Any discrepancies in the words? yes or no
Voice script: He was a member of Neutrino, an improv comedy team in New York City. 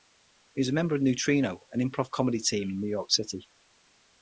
no